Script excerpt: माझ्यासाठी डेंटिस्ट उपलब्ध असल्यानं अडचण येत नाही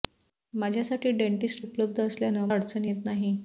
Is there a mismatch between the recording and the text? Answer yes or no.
no